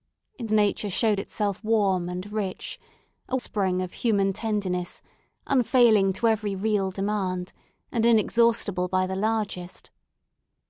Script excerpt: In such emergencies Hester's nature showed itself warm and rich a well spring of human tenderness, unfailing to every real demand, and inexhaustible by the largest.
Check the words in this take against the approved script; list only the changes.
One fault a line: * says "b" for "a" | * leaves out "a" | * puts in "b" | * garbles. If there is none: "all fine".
* leaves out "such emergencies Hester's"
* leaves out "well"